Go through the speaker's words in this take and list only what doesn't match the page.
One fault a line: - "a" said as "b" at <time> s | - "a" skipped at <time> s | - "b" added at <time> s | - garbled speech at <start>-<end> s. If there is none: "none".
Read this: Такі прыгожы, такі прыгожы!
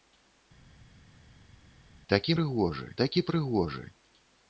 none